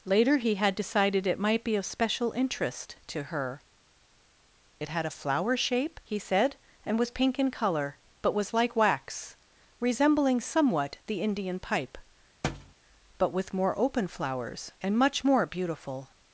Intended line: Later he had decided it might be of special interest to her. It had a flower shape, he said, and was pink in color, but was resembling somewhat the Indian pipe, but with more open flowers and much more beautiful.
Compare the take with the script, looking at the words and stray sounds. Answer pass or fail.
fail